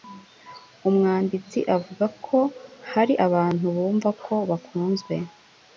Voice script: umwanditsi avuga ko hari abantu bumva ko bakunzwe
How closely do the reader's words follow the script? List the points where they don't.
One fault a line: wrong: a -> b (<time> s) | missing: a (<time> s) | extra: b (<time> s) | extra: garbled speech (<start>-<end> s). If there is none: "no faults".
no faults